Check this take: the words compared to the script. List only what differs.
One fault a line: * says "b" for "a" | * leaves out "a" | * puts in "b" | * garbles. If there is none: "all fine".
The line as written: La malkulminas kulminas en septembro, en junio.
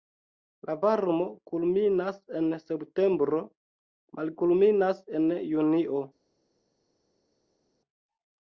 * says "varmo" for "malkulminas"
* puts in "malkulminas"